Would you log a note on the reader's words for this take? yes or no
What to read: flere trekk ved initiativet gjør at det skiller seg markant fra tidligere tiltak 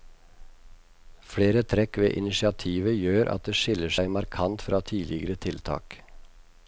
no